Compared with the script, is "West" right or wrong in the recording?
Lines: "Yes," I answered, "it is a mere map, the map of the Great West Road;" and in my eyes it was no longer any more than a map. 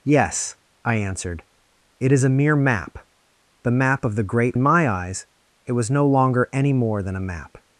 wrong